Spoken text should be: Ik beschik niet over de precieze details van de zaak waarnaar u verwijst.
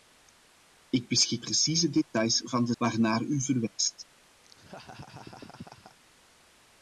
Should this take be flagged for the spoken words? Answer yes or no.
yes